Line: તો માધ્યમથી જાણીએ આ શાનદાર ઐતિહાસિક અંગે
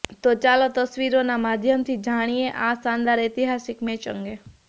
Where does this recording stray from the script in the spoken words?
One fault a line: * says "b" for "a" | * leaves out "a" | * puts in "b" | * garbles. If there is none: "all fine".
* puts in "ચાલો તસવીરોના"
* puts in "મેચ"